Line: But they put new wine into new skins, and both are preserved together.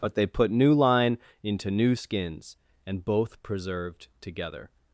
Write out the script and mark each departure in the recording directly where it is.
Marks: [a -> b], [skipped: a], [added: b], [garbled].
But they put new [wine -> line] into new skins, and both [skipped: are] preserved together.